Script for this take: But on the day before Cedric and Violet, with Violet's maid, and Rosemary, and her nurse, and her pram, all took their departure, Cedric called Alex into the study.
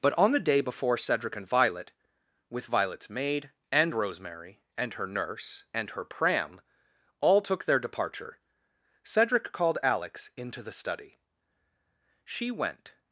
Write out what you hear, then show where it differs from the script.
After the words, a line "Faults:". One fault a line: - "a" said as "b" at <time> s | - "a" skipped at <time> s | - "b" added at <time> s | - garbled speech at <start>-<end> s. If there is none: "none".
But on the day before Cedric and Violet, with Violet's maid, and Rosemary, and her nurse, and her pram, all took their departure, Cedric called Alex into the study. She went
Faults:
- "She went" added at 12.2 s